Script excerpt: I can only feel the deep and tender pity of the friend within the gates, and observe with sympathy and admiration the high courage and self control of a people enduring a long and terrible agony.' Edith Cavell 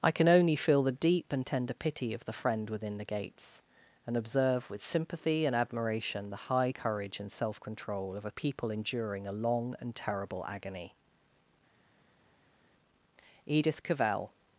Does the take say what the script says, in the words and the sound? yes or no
yes